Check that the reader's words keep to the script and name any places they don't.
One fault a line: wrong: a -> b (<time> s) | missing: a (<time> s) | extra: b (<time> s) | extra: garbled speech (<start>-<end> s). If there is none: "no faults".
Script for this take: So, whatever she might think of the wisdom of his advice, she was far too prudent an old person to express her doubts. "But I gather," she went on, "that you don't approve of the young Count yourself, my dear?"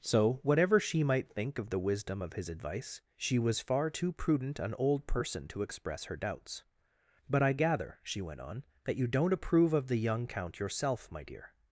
no faults